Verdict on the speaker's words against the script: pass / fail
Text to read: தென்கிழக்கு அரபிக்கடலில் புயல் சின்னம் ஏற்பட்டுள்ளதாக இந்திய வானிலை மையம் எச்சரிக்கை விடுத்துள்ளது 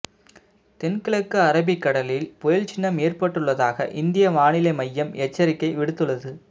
pass